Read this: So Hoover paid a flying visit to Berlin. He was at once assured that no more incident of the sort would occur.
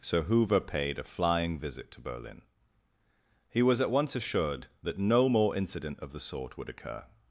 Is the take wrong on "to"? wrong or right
right